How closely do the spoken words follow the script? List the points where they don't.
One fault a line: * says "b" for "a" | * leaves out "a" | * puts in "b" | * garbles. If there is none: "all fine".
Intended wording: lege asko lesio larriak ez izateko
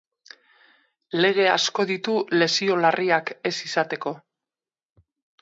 * puts in "ditu"